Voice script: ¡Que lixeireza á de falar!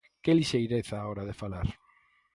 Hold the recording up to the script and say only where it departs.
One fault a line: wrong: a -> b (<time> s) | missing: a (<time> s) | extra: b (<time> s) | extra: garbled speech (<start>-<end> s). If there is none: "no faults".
extra: hora (1.1 s)